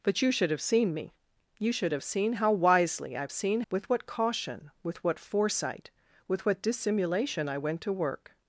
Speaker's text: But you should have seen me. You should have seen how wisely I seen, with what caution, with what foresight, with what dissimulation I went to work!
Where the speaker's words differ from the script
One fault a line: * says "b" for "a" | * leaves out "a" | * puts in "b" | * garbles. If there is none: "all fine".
all fine